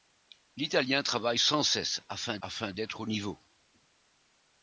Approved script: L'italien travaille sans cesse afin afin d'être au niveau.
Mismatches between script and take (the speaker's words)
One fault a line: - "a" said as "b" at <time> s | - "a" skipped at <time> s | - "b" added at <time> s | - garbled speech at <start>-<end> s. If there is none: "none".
none